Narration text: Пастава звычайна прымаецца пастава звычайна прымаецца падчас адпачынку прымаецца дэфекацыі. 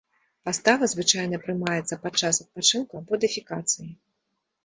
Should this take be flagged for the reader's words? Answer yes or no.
yes